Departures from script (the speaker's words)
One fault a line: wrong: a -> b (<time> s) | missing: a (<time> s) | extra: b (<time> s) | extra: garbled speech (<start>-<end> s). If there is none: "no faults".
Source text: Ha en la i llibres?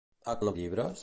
no faults